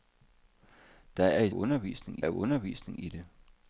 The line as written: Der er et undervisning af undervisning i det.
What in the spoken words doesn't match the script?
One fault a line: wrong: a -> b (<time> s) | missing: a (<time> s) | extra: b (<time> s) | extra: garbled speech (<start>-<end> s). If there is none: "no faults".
no faults